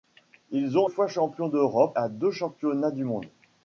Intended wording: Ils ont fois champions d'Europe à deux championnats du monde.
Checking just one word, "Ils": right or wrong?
right